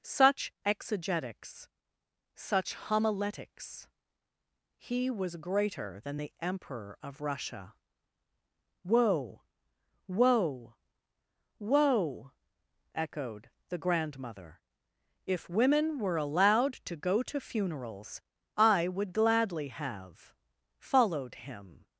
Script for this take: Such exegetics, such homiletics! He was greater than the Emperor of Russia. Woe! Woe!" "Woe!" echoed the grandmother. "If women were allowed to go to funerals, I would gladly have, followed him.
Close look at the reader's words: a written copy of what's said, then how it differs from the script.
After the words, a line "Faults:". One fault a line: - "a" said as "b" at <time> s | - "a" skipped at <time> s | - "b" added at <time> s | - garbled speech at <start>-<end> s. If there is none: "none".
Such exegetics, such homiletics! He was greater than the Emperor of Russia. Woe! Woe!" "Woe!" echoed the grandmother. "If women were allowed to go to funerals, I would gladly have, followed him.
Faults:
none